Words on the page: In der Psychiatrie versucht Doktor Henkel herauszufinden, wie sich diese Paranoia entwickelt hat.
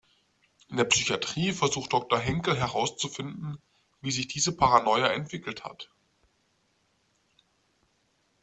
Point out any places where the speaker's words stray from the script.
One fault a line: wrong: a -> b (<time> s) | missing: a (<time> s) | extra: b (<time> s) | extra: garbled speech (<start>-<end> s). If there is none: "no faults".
no faults